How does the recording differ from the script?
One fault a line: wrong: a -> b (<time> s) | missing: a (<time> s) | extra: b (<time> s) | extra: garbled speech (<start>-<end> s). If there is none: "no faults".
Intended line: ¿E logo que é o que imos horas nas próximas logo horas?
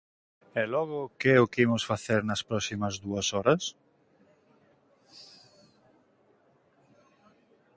wrong: horas -> facer (1.9 s)
wrong: logo -> dúas (3.0 s)